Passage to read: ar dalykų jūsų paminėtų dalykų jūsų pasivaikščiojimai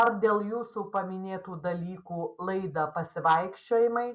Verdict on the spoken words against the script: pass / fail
fail